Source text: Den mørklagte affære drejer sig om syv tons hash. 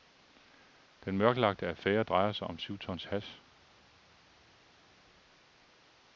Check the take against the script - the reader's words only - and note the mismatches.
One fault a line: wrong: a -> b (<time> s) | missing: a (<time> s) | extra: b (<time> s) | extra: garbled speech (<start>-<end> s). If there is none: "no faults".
no faults